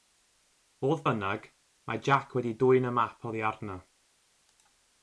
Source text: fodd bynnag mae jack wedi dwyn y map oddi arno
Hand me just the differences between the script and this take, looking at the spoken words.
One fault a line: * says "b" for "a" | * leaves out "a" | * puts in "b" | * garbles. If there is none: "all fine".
all fine